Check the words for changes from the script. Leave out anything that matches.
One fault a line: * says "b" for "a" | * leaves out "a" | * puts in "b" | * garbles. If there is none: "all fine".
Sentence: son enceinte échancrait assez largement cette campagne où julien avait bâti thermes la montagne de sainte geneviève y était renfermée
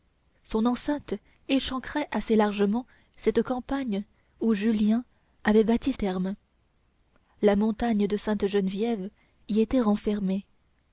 all fine